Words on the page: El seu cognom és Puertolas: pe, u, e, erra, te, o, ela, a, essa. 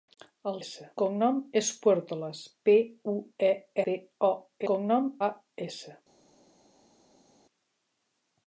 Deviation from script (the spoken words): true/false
true